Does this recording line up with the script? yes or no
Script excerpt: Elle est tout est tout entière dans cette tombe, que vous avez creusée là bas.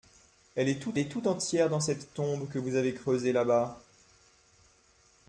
yes